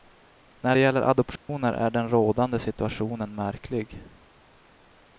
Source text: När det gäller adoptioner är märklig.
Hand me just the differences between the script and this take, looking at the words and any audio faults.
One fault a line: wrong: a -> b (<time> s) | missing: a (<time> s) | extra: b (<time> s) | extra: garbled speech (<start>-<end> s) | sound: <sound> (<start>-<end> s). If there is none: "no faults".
sound: dropout (1.4-1.5 s)
extra: den rådande situationen (1.9 s)